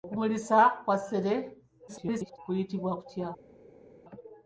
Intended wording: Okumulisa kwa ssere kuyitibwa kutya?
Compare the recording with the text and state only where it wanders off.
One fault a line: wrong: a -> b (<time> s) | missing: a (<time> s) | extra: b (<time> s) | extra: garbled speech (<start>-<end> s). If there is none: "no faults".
extra: garbled speech (1.9-2.4 s)